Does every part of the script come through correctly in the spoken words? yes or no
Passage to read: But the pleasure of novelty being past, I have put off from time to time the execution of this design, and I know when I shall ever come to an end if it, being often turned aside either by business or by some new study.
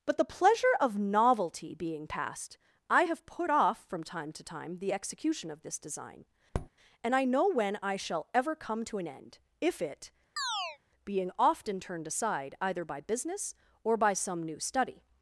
yes